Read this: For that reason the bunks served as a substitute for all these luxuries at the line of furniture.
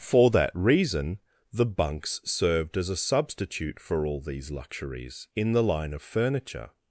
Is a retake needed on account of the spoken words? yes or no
yes